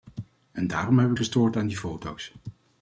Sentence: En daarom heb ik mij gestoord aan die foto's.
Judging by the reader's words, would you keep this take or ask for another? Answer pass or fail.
fail